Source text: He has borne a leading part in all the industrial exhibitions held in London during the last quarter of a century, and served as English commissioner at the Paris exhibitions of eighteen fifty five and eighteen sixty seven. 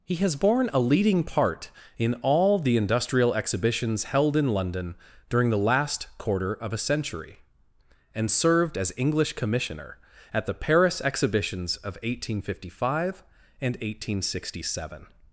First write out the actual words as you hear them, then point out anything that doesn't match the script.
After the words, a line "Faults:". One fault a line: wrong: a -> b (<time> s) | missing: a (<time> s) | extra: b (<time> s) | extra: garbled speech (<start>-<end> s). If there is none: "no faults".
He has borne a leading part in all the industrial exhibitions held in London during the last quarter of a century, and served as English commissioner at the Paris exhibitions of eighteen fifty five and eighteen sixty seven.
Faults:
no faults